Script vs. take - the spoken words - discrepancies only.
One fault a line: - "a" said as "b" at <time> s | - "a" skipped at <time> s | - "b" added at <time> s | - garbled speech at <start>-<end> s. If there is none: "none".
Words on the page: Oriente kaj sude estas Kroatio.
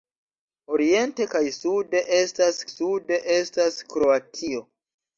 - "sude estas" added at 2.7 s